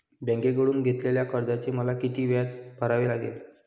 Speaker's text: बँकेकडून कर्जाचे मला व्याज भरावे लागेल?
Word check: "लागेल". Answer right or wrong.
right